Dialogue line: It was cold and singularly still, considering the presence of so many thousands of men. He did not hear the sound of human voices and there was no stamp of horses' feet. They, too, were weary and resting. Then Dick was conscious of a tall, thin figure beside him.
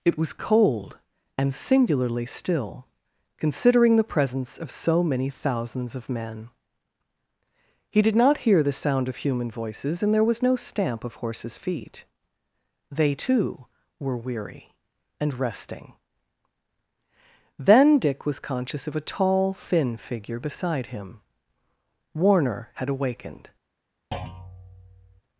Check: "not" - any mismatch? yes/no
no